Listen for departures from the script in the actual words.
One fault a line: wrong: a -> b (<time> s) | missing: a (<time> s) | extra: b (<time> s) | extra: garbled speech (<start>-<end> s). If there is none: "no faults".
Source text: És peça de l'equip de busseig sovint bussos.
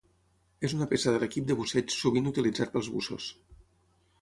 extra: una (0.8 s)
extra: utilitzat pels (2.3 s)